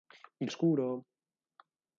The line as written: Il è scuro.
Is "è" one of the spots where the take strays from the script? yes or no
no